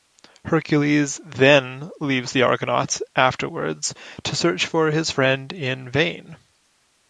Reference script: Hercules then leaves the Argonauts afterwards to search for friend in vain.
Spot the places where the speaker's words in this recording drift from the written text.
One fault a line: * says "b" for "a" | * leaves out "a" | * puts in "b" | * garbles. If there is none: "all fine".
* puts in "his"